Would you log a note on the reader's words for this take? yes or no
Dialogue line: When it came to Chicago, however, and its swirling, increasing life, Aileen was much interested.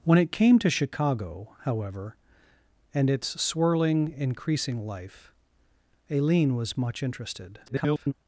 yes